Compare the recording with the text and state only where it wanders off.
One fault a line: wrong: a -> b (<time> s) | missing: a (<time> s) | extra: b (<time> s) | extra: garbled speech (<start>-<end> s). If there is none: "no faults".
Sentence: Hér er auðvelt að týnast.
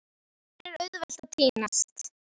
no faults